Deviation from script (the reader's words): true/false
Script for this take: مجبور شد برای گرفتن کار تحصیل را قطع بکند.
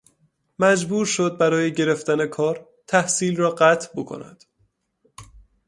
false